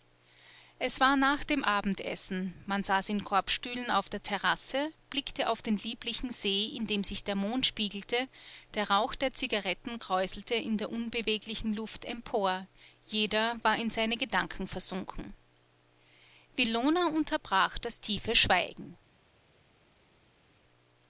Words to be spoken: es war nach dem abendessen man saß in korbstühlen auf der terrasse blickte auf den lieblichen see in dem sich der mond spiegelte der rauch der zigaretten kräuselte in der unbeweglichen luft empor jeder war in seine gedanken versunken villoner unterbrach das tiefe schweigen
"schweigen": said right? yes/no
yes